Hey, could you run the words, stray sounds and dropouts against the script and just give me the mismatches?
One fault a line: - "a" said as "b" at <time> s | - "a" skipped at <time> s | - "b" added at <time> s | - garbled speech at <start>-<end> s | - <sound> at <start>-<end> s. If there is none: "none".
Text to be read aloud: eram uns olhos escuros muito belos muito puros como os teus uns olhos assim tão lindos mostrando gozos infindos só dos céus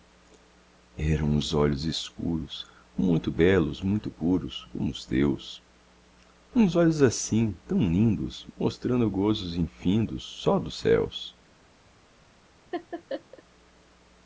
- laugh at 12.7-13.4 s